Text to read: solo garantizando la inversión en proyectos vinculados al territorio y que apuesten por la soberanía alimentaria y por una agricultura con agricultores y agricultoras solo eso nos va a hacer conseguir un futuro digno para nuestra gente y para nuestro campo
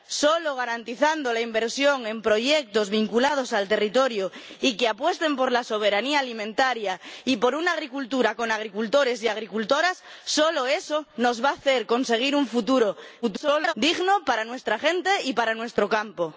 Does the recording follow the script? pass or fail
fail